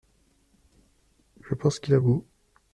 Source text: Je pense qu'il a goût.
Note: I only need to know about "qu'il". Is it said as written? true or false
true